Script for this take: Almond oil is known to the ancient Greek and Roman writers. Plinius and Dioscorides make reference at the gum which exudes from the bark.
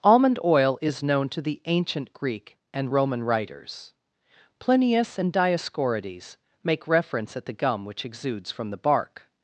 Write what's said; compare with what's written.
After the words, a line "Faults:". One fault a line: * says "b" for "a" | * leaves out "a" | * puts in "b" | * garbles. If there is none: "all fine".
Almond oil is known to the ancient Greek and Roman writers. Plinius and Dioscorides make reference at the gum which exudes from the bark.
Faults:
all fine